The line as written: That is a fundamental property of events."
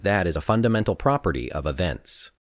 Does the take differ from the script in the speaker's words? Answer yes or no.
no